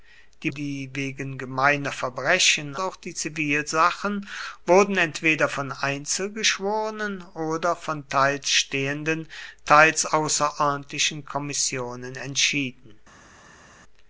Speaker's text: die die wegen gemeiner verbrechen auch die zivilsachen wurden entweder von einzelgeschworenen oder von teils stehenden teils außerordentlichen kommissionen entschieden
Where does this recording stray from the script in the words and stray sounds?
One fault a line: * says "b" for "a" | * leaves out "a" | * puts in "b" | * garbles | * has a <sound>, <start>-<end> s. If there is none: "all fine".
all fine